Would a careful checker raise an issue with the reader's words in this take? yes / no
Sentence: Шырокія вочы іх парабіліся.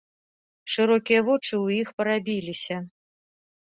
yes